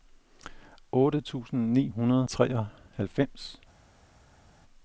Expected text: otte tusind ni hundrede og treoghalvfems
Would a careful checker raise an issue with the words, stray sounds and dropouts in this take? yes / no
yes